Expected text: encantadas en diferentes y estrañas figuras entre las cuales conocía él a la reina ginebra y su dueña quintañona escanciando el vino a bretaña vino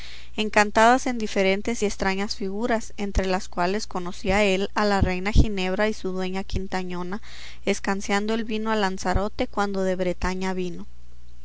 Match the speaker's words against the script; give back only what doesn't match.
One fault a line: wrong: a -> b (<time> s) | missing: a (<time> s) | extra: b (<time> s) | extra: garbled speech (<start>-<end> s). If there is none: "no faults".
extra: lanzarote cuando de (8.8 s)